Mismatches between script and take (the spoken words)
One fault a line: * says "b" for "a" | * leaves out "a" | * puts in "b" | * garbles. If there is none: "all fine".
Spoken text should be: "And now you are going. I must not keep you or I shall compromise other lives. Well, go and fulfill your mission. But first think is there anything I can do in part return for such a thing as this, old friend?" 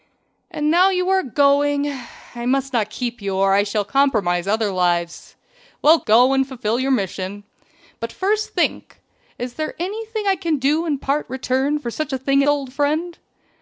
* leaves out "as this"